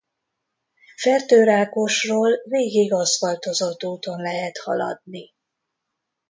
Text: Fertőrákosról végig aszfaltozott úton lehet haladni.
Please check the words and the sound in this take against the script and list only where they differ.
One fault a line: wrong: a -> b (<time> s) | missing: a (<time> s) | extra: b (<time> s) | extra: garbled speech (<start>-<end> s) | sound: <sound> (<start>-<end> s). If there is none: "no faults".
no faults